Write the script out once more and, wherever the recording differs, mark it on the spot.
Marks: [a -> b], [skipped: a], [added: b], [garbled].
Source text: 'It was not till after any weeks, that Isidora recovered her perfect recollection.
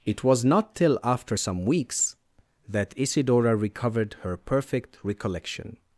'It was not till after [any -> some] weeks, that Isidora recovered her perfect recollection.